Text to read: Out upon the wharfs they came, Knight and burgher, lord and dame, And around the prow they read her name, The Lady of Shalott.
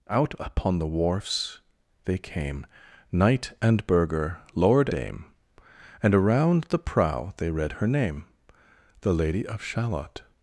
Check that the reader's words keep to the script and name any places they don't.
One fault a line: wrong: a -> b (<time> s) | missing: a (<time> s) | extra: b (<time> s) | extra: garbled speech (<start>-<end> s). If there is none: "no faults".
missing: and (4.9 s)